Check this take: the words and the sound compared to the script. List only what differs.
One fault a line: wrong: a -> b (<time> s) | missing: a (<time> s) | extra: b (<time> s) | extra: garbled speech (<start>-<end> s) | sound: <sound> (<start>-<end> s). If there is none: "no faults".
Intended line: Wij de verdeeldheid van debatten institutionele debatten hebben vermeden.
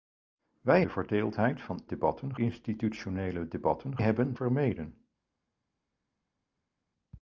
no faults